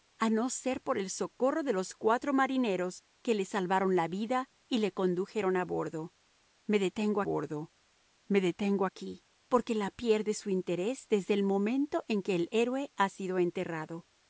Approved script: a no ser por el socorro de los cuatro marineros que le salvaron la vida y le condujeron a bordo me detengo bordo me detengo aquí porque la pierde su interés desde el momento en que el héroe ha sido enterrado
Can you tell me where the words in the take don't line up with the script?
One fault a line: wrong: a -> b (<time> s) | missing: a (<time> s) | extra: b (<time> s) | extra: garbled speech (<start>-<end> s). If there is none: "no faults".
no faults